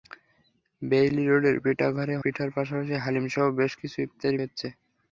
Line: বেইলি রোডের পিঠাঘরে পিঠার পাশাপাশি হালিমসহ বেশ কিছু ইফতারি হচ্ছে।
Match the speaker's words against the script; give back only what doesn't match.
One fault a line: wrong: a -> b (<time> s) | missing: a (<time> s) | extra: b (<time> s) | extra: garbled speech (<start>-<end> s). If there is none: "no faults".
no faults